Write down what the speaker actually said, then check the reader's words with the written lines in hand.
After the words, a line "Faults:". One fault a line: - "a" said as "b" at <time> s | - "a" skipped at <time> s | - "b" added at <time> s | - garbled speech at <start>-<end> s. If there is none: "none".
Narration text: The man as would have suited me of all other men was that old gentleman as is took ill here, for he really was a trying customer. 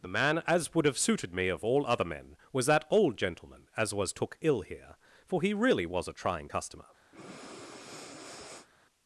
The man as would have suited me of all other men was that old gentleman as was took ill here, for he really was a trying customer.
Faults:
- "is" said as "was" at 3.9 s